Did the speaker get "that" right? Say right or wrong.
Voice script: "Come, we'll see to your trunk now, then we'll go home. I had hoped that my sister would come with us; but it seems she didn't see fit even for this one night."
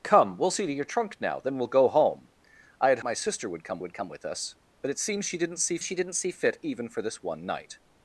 wrong